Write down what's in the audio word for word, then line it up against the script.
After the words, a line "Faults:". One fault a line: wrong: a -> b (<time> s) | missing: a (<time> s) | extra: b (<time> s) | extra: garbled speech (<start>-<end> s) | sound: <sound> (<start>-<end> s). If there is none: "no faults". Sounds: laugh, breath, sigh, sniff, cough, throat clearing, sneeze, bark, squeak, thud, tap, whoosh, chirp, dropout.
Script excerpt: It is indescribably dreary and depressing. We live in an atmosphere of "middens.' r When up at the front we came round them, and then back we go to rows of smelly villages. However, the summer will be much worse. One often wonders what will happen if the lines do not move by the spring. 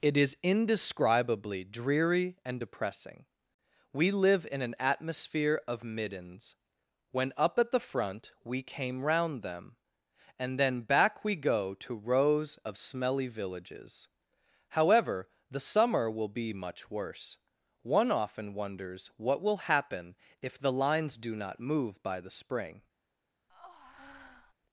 It is indescribably dreary and depressing. We live in an atmosphere of "middens.' When up at the front we came round them, and then back we go to rows of smelly villages. However, the summer will be much worse. One often wonders what will happen if the lines do not move by the spring.
Faults:
missing: r (6.5 s)
sound: breath (23.5-24.5 s)